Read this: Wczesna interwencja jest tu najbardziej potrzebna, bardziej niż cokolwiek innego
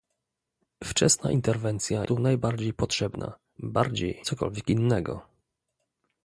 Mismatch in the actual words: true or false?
true